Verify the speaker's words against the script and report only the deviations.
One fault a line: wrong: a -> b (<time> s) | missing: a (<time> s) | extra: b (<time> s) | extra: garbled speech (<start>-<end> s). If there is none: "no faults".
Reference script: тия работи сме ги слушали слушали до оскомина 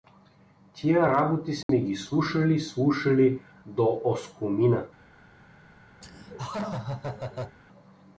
no faults